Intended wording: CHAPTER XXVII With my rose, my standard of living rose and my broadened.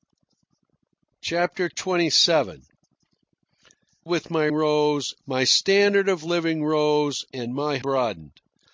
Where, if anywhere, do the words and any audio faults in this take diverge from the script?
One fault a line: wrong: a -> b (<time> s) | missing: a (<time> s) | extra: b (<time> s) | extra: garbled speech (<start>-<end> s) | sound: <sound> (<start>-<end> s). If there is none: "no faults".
no faults